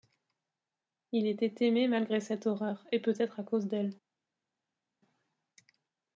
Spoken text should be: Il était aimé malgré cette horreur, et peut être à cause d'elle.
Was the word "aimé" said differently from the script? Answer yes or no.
no